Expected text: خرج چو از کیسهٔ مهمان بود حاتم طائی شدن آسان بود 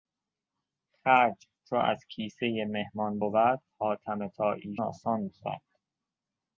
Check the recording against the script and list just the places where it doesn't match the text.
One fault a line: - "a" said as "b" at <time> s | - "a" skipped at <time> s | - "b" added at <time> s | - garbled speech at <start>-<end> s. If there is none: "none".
- "شدن" skipped at 4.8 s